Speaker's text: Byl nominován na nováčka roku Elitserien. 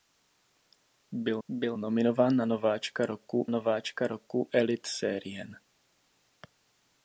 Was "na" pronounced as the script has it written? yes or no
yes